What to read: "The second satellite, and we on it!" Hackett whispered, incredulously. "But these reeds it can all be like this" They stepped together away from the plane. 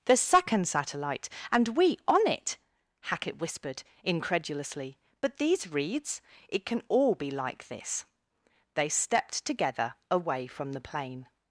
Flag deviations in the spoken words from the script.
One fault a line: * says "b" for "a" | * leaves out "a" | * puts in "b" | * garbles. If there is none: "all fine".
all fine